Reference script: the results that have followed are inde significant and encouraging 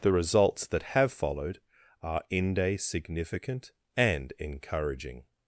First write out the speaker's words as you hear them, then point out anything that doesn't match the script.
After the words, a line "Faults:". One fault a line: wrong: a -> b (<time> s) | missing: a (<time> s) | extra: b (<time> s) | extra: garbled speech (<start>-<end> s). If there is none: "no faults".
the results that have followed are inde significant and encouraging
Faults:
no faults